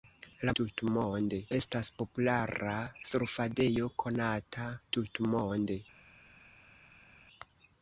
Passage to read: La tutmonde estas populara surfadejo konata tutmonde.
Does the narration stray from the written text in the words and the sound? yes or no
no